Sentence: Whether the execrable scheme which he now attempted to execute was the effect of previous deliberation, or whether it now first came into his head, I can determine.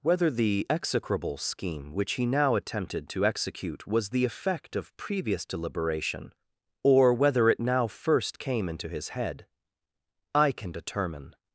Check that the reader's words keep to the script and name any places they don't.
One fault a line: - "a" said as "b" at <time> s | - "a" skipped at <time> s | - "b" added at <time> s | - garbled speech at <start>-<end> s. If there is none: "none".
none